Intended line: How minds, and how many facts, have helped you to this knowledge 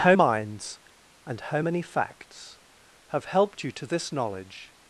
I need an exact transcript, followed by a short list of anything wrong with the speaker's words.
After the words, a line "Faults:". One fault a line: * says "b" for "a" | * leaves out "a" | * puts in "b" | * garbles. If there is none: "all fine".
How minds, and how many facts, have helped you to this knowledge
Faults:
all fine